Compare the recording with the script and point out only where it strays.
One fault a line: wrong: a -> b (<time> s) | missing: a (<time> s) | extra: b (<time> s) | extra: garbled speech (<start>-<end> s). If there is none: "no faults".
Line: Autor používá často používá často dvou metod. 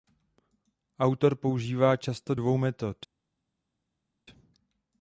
missing: používá často (2.4 s)